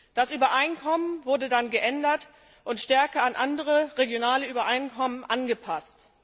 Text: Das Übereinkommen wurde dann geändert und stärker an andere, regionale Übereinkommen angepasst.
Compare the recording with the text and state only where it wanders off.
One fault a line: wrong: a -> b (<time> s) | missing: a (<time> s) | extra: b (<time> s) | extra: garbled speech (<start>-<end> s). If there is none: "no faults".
no faults